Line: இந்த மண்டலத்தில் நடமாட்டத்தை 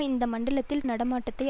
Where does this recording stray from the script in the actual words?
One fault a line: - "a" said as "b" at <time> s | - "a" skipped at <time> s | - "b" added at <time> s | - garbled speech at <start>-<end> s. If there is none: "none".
none